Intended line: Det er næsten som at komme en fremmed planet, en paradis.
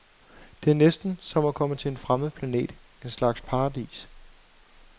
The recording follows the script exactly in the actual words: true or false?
false